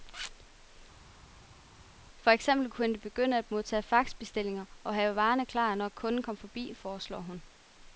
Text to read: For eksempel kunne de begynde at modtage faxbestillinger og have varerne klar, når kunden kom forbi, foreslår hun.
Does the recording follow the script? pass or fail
pass